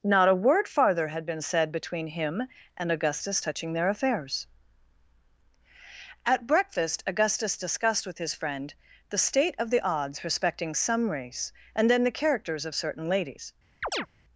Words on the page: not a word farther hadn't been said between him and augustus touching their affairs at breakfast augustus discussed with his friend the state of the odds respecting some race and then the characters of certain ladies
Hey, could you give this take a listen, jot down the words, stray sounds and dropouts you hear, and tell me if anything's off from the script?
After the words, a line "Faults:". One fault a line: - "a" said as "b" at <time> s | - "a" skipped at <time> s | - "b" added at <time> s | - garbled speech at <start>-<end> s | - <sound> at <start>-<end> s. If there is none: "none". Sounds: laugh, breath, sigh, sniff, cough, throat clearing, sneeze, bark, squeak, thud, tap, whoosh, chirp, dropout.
not a word farther had been said between him and augustus touching their affairs at breakfast augustus discussed with his friend the state of the odds respecting some race and then the characters of certain ladies
Faults:
- "hadn't" said as "had" at 1.1 s
- chirp at 13.8-14.1 s